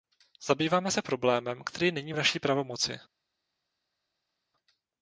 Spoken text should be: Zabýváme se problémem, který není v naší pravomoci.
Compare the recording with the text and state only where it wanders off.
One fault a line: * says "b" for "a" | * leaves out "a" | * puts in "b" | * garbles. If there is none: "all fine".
all fine